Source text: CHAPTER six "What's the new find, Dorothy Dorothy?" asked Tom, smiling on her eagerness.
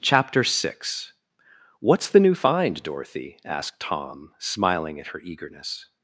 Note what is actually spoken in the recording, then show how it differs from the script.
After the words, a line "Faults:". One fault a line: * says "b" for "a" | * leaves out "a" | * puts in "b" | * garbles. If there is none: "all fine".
CHAPTER six "What's the new find, Dorothy?" asked Tom, smiling at her eagerness.
Faults:
* leaves out "Dorothy"
* says "at" for "on"